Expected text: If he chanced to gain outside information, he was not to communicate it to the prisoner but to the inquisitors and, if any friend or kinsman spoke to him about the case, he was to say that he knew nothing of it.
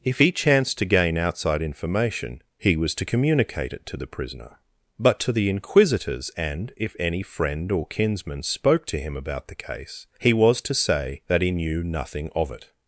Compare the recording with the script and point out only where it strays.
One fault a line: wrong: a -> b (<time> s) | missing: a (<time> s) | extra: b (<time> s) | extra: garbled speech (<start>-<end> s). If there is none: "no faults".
missing: not (3.0 s)